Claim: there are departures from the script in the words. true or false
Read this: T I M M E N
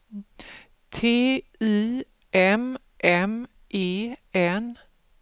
false